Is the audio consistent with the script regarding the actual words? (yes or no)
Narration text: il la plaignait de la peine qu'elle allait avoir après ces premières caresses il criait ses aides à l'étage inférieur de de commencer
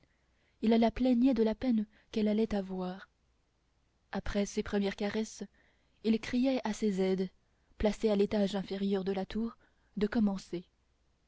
no